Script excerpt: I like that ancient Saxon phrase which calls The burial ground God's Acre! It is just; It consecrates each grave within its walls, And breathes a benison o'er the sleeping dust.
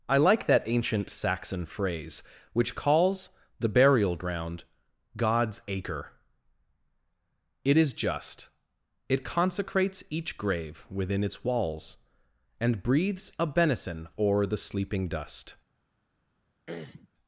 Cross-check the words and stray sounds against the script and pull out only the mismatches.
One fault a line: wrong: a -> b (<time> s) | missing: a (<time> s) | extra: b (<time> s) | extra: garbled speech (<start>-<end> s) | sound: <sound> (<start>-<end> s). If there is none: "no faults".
sound: throat clearing (16.7-17.1 s)